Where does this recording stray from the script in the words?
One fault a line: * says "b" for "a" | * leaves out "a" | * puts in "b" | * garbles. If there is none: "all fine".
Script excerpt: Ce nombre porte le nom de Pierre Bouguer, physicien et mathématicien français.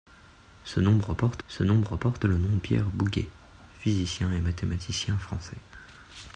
* puts in "ce nombre porte"
* leaves out "de"